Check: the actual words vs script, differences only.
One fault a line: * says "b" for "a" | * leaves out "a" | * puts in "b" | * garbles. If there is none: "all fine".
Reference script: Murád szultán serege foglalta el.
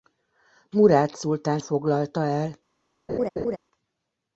* leaves out "serege"